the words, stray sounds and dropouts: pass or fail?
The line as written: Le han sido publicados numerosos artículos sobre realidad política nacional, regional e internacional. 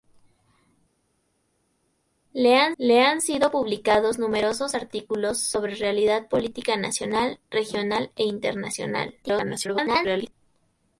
fail